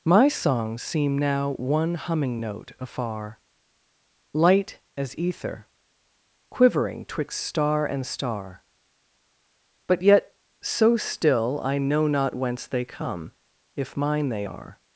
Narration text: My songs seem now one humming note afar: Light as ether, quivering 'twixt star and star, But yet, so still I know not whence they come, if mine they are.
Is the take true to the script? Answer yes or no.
yes